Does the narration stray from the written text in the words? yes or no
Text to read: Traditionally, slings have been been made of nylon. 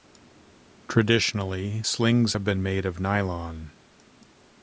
yes